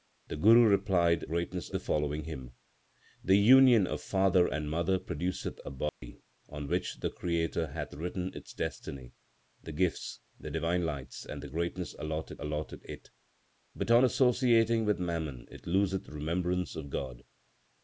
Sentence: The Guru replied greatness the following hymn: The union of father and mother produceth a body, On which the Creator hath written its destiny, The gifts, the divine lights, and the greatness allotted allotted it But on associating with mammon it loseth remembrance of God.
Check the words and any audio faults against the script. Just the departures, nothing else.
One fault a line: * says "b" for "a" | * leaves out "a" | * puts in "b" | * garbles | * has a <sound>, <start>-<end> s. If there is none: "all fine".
* has a dropout, 5.9-6.0 s